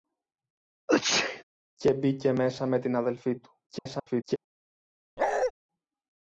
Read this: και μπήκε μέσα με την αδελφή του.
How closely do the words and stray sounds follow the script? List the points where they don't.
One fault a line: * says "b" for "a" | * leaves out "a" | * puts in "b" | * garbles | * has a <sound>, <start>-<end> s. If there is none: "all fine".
* has a sneeze, 0.9-1.4 s
* garbles
* has a bark, 5.2-5.5 s